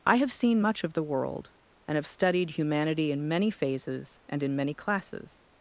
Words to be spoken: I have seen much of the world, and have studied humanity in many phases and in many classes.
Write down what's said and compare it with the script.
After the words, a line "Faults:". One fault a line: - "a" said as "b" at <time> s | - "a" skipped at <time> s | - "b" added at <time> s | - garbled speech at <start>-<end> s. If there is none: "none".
I have seen much of the world, and have studied humanity in many phases and in many classes.
Faults:
none